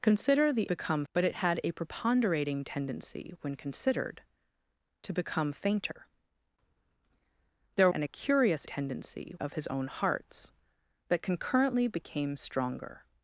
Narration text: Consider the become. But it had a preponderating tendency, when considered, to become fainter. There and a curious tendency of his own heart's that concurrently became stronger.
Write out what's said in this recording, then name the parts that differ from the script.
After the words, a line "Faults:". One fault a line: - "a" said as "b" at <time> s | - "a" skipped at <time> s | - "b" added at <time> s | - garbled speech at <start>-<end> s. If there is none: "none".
Consider the become. But it had a preponderating tendency, when considered, to become fainter. There and a curious tendency of his own heart's that concurrently became stronger.
Faults:
none